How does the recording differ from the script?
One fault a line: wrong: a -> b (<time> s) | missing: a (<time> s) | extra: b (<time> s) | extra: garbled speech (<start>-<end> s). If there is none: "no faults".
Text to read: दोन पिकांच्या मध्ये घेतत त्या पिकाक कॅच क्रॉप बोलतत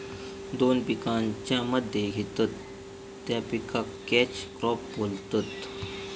no faults